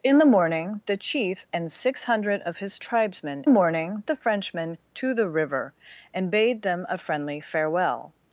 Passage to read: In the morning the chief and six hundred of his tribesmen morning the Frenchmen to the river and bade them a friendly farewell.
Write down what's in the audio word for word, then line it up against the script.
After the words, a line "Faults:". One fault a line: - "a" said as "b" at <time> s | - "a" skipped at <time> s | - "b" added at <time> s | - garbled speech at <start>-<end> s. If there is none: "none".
In the morning the chief and six hundred of his tribesmen morning the Frenchmen to the river and bade them a friendly farewell.
Faults:
none